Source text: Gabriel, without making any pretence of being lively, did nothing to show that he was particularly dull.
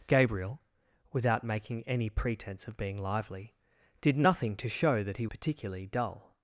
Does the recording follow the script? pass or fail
fail